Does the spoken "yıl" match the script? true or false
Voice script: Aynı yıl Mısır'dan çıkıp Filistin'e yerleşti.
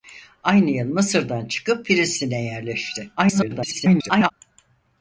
true